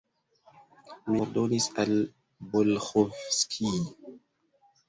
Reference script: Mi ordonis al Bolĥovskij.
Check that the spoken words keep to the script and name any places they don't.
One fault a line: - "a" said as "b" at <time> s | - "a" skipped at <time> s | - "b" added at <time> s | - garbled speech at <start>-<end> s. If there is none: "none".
none